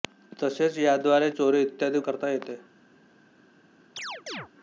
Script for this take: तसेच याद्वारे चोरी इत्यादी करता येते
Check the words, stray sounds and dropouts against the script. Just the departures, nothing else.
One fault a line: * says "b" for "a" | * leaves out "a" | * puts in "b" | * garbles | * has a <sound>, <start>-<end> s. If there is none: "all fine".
* has a chirp, 4.0-4.5 s